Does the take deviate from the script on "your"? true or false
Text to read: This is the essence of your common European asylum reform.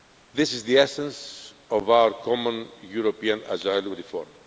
true